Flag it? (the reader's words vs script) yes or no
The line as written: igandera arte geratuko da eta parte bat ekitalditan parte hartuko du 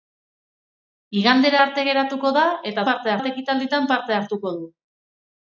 no